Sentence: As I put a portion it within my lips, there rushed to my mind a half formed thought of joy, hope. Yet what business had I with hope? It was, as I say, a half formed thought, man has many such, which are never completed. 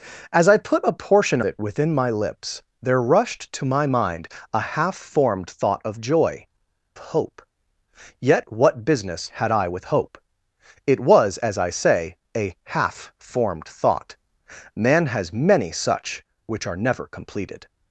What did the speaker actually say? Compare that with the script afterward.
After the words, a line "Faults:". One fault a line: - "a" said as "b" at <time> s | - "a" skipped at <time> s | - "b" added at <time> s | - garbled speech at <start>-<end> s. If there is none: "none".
As I put a portion it within my lips, there rushed to my mind a half formed thought of joy, hope. Yet what business had I with hope? It was, as I say, a half formed thought, man has many such, which are never completed.
Faults:
none